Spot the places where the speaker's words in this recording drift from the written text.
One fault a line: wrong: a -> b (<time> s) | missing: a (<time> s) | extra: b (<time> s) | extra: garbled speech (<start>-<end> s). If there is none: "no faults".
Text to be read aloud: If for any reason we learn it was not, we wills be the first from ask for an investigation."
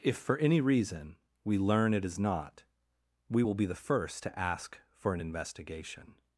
wrong: was -> is (2.0 s)
wrong: wills -> will (3.4 s)
wrong: from -> to (4.2 s)